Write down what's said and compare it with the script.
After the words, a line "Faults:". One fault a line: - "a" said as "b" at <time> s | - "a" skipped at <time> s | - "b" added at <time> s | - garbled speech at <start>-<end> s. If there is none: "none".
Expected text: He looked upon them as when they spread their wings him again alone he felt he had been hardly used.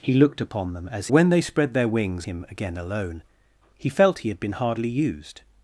He looked upon them as when they spread their wings him again alone he felt he had been hardly used.
Faults:
none